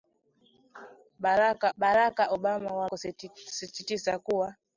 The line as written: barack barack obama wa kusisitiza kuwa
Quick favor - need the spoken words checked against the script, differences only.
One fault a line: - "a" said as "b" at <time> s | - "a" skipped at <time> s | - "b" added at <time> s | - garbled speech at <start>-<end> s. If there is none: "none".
none